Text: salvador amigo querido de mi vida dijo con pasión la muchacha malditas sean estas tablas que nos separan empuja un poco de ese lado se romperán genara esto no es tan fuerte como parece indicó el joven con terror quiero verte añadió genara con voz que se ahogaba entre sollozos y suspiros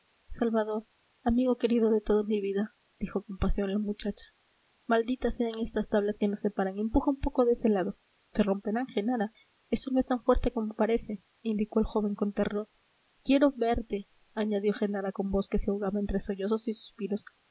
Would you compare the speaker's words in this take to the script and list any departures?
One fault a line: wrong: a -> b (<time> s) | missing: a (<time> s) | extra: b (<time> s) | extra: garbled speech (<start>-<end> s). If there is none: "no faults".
extra: toda (2.0 s)